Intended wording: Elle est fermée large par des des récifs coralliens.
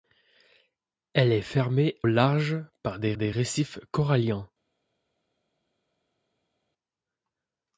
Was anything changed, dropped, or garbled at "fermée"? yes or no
no